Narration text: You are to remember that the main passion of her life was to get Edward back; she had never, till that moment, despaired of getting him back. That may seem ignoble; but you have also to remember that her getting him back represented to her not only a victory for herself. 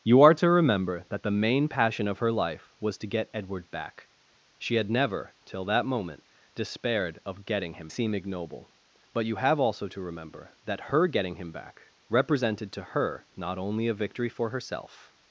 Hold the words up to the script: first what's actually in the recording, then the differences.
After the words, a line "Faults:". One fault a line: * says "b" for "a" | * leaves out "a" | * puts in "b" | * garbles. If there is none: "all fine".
You are to remember that the main passion of her life was to get Edward back; she had never, till that moment, despaired of getting him seem ignoble; but you have also to remember that her getting him back represented to her not only a victory for herself.
Faults:
* leaves out "back That may"